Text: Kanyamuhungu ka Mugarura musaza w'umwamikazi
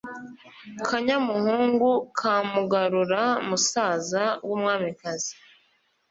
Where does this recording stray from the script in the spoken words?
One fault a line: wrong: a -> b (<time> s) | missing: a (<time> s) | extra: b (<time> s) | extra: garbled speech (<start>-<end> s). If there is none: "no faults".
no faults